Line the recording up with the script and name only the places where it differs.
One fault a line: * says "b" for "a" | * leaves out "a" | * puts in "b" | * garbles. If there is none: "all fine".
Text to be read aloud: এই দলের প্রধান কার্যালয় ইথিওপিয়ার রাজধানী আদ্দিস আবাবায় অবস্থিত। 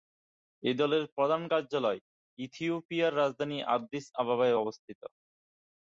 all fine